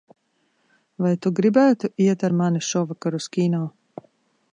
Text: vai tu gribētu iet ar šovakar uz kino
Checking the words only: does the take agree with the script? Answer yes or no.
no